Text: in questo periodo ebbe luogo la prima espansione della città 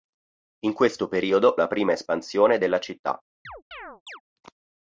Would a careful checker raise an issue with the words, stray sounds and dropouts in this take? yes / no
yes